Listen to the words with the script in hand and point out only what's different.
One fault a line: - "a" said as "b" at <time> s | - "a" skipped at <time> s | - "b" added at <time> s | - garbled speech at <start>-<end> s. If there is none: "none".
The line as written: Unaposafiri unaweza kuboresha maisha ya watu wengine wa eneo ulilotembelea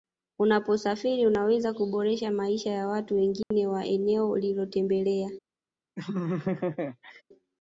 none